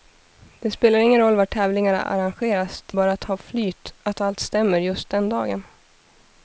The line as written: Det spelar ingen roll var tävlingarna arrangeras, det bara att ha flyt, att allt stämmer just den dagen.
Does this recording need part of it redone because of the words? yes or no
no